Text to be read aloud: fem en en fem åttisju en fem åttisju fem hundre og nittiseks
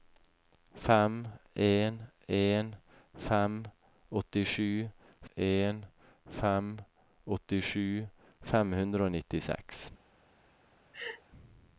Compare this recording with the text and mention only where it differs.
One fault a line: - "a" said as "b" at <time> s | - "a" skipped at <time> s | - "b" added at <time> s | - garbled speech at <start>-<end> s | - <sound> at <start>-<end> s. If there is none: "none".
- laugh at 10.9-11.2 s